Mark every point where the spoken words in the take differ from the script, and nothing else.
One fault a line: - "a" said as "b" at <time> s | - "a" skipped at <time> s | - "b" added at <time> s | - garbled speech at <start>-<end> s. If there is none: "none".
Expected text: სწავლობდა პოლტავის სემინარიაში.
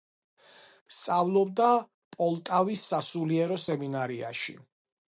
- "სასულიერო" added at 2.9 s